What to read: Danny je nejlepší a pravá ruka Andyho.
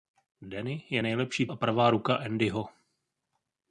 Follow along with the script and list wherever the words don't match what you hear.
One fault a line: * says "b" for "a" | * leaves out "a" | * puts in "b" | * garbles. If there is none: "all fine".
all fine